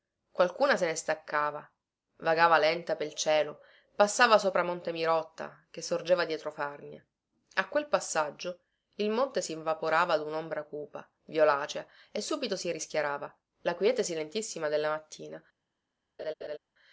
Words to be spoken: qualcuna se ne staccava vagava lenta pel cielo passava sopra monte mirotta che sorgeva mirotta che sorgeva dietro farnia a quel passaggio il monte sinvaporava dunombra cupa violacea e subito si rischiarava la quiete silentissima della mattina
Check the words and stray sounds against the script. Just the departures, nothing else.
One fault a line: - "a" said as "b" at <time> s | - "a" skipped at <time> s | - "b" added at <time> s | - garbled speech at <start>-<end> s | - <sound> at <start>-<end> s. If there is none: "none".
- "mirotta che sorgeva" skipped at 6.2 s
- laugh at 16.2-16.6 s